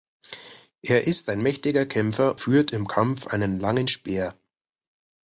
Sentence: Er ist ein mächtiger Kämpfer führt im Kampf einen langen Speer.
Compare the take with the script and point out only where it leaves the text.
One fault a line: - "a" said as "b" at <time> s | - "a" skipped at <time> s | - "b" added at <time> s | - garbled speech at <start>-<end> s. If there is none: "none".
none